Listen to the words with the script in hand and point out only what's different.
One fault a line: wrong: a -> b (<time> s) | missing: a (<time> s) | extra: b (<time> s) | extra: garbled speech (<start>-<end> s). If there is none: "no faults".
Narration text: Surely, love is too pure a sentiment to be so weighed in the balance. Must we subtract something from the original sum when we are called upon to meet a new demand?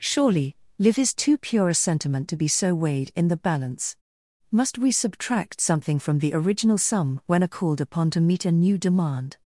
wrong: love -> live (0.8 s)
missing: we (7.4 s)